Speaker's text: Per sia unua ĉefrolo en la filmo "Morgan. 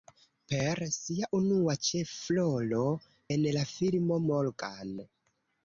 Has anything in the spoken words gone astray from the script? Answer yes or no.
no